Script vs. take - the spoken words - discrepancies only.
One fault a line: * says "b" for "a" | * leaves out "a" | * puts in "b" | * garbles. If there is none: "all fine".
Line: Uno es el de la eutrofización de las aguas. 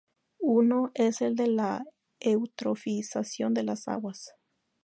all fine